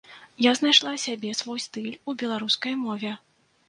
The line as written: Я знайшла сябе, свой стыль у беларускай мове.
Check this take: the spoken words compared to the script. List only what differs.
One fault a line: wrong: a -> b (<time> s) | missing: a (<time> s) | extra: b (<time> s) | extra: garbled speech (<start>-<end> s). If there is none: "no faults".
no faults